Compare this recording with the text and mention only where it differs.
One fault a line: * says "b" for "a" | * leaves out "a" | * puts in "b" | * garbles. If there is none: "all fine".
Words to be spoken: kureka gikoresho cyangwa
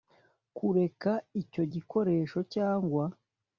* puts in "icyo"